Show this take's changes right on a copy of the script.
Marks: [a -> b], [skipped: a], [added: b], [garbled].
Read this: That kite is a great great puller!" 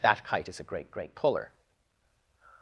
That kite is a great great puller!"